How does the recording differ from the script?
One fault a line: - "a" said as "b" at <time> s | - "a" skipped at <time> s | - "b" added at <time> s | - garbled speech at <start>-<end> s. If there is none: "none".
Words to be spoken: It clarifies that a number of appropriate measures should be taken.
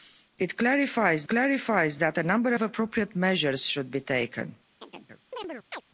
- "clarifies" added at 1.3 s